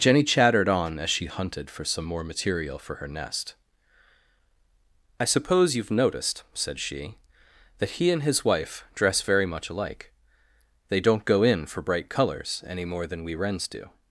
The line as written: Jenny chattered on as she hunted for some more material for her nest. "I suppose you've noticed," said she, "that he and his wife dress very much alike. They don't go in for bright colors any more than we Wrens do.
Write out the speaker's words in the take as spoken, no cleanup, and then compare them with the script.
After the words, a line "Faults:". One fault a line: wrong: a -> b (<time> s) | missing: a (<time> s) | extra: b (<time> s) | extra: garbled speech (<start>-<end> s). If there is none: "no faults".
Jenny chattered on as she hunted for some more material for her nest. "I suppose you've noticed," said she, "that he and his wife dress very much alike. They don't go in for bright colors any more than we Wrens do.
Faults:
no faults